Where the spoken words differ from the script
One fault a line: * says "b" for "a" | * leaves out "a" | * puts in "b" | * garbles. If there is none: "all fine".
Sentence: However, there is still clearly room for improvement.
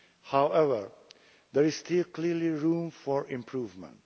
all fine